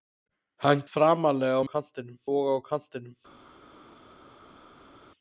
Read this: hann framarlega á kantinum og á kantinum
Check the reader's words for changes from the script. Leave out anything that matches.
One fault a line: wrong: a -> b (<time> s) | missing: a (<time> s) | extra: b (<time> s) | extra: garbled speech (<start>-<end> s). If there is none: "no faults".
no faults